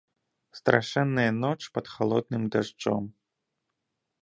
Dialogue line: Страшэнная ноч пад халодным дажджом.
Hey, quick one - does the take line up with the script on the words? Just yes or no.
yes